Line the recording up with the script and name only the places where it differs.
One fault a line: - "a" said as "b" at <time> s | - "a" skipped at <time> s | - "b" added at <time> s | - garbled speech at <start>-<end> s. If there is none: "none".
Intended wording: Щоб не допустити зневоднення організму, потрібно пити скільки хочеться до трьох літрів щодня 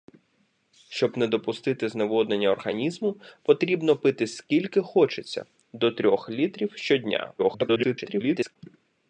- garbled speech at 7.4-8.6 s